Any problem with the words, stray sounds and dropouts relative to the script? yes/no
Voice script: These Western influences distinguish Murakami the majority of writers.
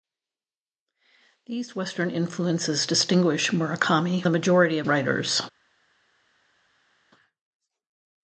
no